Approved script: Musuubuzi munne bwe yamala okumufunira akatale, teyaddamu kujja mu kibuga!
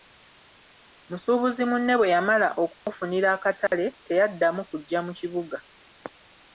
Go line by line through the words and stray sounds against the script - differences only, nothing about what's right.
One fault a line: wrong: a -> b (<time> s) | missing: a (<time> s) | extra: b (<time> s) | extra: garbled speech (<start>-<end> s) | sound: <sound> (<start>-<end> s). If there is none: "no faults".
sound: dropout (2.8-2.9 s)
sound: dropout (3.7-3.7 s)